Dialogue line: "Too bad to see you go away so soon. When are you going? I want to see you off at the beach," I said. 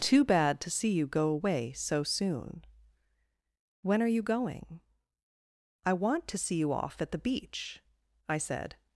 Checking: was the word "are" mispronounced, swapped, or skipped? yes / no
no